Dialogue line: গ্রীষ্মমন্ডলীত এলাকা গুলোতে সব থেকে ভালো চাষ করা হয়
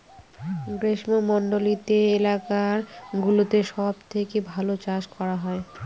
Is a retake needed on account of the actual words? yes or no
no